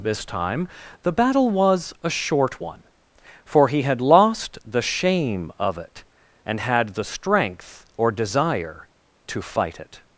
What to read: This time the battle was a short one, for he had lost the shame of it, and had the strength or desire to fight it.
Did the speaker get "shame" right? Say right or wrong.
right